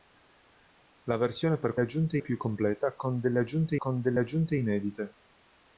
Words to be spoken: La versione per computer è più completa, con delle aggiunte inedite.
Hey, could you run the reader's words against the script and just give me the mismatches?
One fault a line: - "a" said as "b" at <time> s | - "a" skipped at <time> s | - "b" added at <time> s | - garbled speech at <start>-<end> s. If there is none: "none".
- "computer" said as "aggiunte" at 1.8 s
- "con delle aggiunte" added at 3.8 s